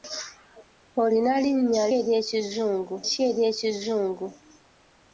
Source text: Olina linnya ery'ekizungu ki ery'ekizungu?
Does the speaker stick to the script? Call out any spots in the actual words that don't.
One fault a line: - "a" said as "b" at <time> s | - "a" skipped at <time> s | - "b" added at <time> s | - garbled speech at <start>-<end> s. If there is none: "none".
none